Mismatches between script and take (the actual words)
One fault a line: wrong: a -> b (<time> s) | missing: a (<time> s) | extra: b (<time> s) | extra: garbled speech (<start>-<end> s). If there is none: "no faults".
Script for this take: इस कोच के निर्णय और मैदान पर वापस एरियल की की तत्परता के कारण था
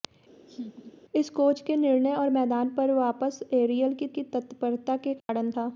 no faults